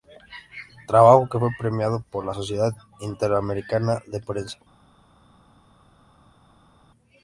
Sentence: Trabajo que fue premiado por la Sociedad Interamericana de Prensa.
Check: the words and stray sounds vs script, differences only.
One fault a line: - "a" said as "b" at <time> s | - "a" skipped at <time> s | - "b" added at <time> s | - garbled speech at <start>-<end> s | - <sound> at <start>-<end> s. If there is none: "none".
none